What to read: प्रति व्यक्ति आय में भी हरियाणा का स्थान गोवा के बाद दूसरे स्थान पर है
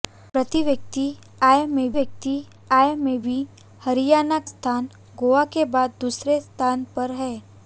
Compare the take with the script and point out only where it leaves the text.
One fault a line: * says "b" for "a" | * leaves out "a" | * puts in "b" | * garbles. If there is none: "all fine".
* puts in "व्यक्ति आय में"
* leaves out "का"